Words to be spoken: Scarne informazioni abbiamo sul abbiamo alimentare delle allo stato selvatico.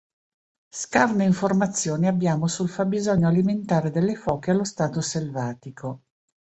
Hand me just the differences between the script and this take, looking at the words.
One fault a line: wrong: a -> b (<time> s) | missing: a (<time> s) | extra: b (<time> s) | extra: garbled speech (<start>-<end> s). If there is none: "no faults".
wrong: abbiamo -> fabbisogno (2.7 s)
extra: foche (4.2 s)